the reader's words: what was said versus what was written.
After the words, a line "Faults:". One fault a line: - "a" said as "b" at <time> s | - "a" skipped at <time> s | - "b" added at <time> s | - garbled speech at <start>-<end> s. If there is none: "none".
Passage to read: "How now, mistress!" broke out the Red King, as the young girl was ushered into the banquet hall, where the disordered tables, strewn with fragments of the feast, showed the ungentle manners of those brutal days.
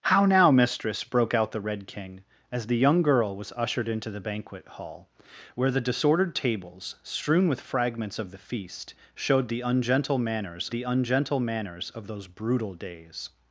"How now, mistress!" broke out the Red King, as the young girl was ushered into the banquet hall, where the disordered tables, strewn with fragments of the feast, showed the ungentle manners the ungentle manners of those brutal days.
Faults:
- "the ungentle manners" added at 10.7 s